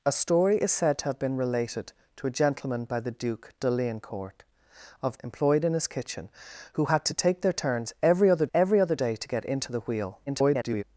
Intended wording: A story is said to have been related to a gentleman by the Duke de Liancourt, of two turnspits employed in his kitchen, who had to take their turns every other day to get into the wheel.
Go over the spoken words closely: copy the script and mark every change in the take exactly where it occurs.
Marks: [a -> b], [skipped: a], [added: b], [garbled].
A story is said to have been related to a gentleman by the Duke de Liancourt, of [skipped: two turnspits] employed in his kitchen, who had to take their turns every other [added: every other] day to get into the wheel. [garbled]